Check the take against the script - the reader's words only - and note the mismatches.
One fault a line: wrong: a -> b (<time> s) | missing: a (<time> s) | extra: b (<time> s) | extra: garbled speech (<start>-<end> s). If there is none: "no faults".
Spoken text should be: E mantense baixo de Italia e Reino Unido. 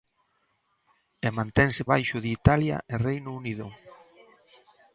no faults